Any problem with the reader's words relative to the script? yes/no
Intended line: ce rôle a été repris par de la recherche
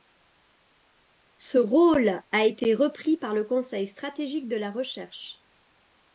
yes